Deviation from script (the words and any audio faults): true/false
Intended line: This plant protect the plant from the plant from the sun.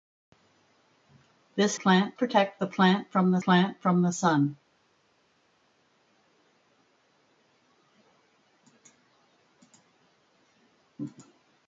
false